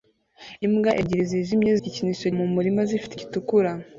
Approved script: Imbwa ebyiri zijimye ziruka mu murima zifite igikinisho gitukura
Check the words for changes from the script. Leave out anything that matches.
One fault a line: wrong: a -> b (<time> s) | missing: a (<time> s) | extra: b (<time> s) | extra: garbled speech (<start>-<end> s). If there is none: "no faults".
wrong: ziruka -> igikinisho (1.8 s)
missing: igikinisho (3.1 s)